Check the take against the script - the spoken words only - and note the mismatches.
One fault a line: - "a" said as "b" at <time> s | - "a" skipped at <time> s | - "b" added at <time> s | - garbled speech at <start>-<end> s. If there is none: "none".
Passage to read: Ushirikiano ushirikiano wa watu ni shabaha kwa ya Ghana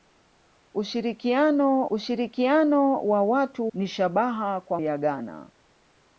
none